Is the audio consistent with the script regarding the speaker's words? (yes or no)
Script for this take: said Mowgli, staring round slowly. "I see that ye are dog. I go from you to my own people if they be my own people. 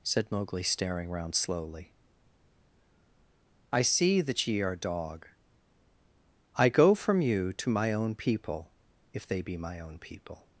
yes